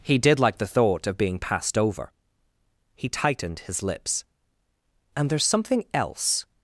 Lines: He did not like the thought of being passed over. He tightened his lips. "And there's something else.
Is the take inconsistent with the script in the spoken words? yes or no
yes